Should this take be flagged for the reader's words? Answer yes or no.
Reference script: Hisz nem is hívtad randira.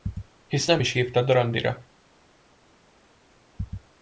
no